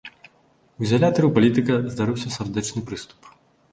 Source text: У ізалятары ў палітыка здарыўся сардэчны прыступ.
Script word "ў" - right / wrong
right